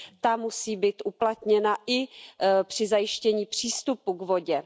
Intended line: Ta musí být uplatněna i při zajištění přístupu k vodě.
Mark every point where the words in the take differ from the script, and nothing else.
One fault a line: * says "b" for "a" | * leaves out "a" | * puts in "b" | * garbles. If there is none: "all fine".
all fine